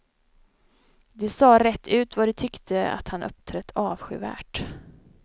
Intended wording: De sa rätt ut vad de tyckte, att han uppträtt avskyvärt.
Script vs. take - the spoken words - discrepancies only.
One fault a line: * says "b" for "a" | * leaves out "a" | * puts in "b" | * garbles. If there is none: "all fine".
all fine